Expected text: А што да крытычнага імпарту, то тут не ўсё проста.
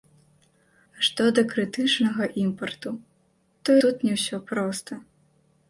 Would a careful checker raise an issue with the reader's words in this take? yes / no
no